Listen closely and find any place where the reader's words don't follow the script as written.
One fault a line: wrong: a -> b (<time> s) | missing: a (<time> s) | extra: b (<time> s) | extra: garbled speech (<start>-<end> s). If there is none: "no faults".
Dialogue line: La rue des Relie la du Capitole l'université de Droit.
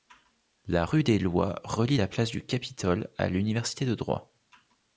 extra: Lois (1.2 s)
extra: place (2.1 s)
extra: à (3.2 s)